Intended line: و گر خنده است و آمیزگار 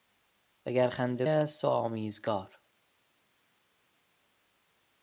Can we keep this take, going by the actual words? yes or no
yes